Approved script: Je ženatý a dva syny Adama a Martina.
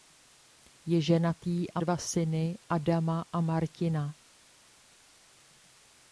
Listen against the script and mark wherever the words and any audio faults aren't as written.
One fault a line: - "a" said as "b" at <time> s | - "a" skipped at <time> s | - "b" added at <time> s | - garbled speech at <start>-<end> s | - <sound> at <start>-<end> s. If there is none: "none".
none